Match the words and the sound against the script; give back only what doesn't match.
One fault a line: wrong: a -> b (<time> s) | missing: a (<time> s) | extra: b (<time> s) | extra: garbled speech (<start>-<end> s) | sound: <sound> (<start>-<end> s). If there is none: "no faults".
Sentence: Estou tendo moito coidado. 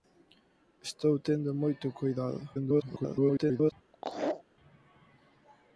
extra: garbled speech (2.5-3.7 s)
sound: laugh (3.9-4.4 s)